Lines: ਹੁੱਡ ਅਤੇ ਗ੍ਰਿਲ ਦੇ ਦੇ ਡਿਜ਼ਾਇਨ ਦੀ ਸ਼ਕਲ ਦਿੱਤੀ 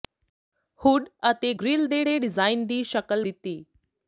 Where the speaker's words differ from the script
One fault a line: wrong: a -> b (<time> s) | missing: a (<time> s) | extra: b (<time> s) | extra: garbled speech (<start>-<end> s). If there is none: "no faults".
no faults